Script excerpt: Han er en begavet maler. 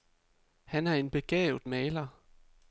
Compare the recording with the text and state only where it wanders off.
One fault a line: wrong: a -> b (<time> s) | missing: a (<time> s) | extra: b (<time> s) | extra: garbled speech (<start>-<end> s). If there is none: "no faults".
no faults